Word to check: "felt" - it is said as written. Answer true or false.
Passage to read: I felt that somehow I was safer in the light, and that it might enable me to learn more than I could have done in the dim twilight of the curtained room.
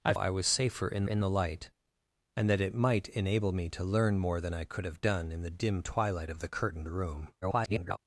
false